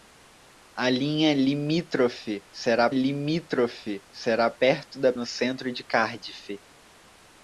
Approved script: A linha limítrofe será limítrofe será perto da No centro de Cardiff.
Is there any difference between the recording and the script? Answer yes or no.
no